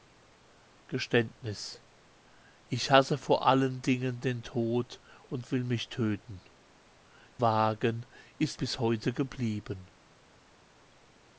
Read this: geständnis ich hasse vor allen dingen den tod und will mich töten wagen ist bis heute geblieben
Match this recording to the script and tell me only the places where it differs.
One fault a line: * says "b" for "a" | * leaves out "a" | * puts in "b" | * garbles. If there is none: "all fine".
all fine